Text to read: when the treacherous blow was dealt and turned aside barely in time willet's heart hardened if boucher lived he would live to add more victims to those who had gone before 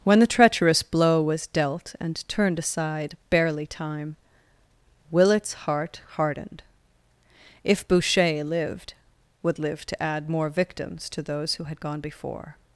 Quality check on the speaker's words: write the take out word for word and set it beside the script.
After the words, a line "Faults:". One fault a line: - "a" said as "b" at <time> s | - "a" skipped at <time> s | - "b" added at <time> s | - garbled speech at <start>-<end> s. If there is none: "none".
when the treacherous blow was dealt and turned aside barely time willet's heart hardened if boucher lived would live to add more victims to those who had gone before
Faults:
- "in" skipped at 3.7 s
- "he" skipped at 8.9 s